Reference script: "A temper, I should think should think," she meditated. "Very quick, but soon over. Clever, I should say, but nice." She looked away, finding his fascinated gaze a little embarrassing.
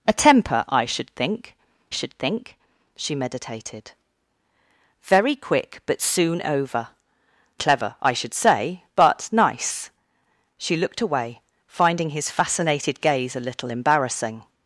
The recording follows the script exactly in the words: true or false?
true